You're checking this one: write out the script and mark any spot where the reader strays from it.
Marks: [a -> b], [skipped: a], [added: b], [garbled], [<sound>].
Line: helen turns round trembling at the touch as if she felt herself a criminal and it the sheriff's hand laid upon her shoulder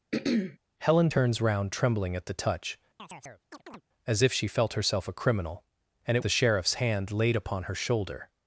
[throat clearing] helen turns round trembling at the touch [chirp] as if she felt herself a criminal and it the sheriff's hand laid upon her shoulder